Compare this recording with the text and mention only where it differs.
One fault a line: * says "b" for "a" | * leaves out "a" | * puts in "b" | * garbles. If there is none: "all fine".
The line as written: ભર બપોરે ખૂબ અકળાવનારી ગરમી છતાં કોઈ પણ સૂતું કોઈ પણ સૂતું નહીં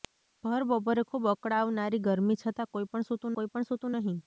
all fine